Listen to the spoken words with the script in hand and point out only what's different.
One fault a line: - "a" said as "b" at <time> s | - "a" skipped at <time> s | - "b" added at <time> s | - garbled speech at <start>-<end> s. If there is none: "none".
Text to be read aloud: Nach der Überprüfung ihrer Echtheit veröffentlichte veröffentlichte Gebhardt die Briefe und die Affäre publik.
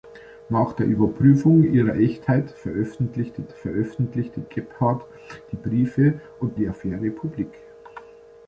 none